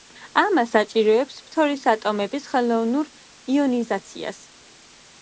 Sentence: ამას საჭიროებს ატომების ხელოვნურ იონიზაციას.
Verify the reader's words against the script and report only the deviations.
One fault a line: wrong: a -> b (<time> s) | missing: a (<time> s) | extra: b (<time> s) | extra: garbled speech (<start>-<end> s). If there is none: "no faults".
extra: ფთორის (1.5 s)